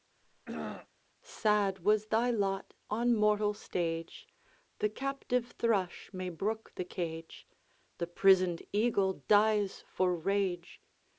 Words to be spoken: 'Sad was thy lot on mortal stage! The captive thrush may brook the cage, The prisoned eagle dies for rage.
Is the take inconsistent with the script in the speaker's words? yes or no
no